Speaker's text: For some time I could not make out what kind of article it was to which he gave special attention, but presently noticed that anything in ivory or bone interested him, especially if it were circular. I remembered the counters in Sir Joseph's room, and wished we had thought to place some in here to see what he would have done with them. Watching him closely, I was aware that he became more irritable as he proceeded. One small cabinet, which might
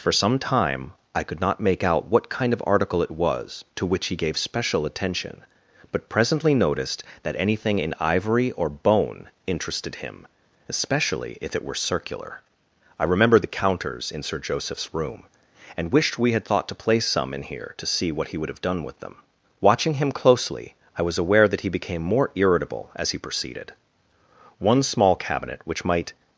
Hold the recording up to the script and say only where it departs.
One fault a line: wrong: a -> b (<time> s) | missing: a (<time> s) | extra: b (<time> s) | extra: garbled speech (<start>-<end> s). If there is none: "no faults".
no faults